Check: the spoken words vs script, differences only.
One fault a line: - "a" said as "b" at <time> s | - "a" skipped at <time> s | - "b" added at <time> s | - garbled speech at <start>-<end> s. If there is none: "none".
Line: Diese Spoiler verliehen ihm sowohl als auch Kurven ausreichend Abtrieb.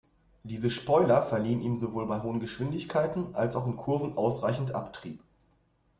- "bei hohen Geschwindigkeiten" added at 2.1 s
- "in" added at 3.7 s